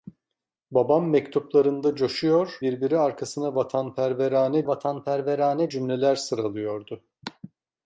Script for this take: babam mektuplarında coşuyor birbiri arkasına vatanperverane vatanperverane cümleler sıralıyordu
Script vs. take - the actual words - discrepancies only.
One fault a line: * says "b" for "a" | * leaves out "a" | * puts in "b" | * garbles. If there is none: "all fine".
all fine